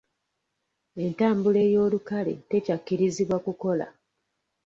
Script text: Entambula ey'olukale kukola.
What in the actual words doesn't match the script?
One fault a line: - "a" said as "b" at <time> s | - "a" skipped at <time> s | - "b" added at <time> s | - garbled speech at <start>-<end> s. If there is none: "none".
- "tekyakkirizibwa" added at 2.5 s